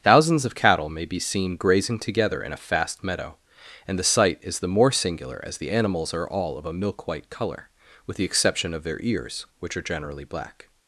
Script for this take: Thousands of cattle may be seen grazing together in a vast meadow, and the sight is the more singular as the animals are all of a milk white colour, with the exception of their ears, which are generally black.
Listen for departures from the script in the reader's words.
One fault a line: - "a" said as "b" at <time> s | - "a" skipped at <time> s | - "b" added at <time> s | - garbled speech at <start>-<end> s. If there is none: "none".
- "vast" said as "fast" at 2.6 s